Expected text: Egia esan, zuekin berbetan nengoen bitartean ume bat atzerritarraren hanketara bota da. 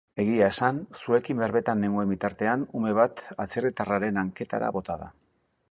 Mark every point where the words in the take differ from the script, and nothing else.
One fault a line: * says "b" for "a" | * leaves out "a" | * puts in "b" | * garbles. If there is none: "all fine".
all fine